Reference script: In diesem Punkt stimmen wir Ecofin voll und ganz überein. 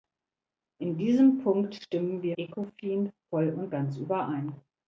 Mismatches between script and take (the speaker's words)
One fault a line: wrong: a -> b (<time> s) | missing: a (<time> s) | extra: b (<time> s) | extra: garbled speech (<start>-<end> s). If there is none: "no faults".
no faults